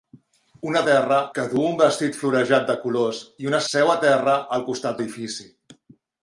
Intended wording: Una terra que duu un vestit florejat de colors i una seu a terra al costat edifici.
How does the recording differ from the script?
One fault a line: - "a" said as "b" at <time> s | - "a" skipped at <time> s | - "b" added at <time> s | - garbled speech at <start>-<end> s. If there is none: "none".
none